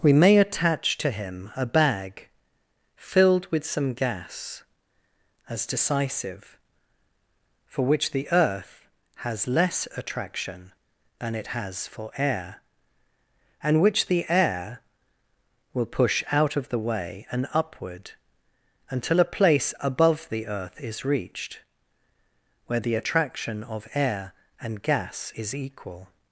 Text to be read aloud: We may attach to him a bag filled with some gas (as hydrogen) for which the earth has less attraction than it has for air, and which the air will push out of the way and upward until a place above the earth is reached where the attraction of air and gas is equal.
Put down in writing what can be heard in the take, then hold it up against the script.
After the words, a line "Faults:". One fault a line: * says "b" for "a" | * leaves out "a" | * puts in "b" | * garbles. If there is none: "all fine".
We may attach to him a bag filled with some gas (as decisive) for which the earth has less attraction than it has for air, and which the air will push out of the way and upward until a place above the earth is reached where the attraction of air and gas is equal.
Faults:
* says "decisive" for "hydrogen"